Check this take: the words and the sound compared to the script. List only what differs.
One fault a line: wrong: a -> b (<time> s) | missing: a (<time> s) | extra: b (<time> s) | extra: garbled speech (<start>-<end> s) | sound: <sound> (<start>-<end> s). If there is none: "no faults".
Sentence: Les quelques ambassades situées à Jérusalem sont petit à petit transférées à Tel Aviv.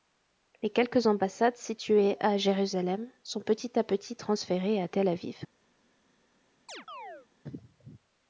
sound: chirp (6.7-7.3 s)